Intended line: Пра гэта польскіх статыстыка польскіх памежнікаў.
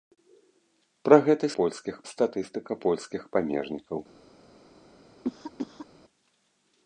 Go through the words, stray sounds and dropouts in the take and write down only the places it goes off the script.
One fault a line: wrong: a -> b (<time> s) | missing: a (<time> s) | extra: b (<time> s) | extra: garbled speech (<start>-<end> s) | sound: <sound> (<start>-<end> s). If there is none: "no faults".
sound: cough (5.2-5.9 s)